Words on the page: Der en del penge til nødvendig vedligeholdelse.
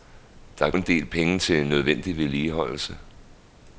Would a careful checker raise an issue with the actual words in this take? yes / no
no